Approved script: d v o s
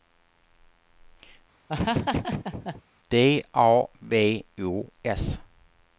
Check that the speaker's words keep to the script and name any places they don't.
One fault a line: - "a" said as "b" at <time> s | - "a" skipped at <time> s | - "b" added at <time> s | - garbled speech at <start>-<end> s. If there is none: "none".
- "a" added at 3.5 s